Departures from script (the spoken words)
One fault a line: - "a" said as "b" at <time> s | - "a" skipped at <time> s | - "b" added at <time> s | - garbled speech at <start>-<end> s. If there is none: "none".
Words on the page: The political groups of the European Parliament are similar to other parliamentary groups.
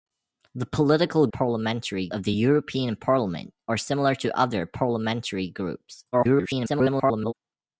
- "groups" said as "parliamentary" at 1.3 s
- garbled speech at 6.1-7.3 s